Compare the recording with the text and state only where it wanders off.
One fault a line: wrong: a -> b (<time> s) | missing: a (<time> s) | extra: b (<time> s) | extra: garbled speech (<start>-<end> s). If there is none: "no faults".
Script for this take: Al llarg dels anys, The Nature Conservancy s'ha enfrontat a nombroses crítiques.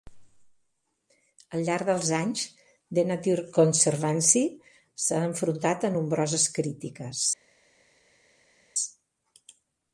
no faults